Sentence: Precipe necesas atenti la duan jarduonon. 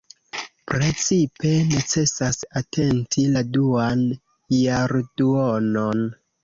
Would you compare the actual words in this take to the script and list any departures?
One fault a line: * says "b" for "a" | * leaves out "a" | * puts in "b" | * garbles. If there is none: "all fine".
all fine